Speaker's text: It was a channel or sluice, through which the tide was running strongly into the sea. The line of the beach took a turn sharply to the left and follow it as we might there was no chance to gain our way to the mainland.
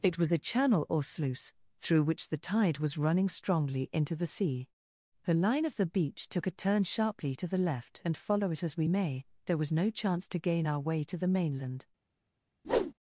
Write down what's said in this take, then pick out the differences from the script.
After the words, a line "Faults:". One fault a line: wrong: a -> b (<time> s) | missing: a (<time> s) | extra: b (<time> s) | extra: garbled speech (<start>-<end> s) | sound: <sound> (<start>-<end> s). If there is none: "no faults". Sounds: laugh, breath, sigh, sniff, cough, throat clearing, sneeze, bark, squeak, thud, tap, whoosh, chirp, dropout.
It was a channel or sluice, through which the tide was running strongly into the sea. The line of the beach took a turn sharply to the left and follow it as we may there was no chance to gain our way to the mainland.
Faults:
wrong: might -> may (8.8 s)
sound: whoosh (12.6-12.9 s)